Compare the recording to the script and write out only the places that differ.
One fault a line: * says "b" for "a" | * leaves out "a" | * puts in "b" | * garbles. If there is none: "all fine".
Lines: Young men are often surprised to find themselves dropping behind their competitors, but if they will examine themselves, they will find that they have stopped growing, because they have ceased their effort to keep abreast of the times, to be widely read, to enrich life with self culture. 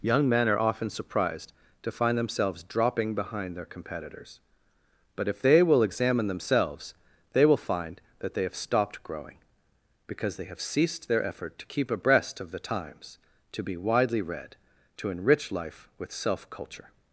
all fine